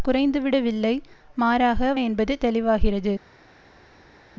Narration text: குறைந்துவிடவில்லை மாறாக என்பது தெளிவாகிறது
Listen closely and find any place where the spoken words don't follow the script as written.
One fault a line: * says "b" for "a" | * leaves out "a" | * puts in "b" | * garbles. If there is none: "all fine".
all fine